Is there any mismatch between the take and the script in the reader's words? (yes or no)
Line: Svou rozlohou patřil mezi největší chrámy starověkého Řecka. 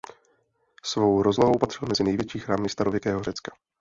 no